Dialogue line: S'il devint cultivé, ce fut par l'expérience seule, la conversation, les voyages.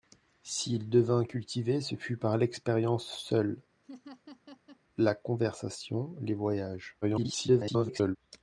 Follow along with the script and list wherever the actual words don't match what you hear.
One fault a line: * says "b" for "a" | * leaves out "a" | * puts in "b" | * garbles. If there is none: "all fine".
* garbles